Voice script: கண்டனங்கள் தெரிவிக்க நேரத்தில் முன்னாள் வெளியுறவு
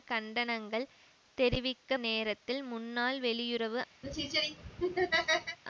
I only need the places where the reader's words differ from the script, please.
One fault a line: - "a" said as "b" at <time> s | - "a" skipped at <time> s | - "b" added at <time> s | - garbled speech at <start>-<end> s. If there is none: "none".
none